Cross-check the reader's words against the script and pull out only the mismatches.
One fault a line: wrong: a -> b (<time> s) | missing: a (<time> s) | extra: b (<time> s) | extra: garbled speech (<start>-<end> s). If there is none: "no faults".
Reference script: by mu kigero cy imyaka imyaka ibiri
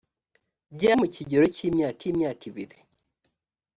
no faults